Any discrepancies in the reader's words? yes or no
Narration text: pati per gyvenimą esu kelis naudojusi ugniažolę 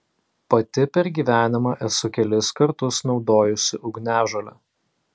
yes